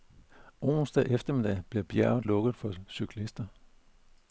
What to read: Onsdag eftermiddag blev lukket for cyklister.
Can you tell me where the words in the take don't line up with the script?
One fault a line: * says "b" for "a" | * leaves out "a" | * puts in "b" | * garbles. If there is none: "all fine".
* puts in "bjerget"